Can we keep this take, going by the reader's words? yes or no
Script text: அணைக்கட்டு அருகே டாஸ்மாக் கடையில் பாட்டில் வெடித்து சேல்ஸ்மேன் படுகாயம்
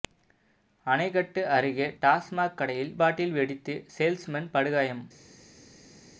yes